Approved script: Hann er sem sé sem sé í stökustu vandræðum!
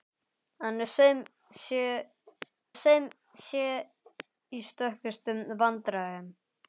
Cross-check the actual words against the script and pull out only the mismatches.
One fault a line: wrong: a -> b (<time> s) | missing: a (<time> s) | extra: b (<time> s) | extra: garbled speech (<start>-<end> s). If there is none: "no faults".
no faults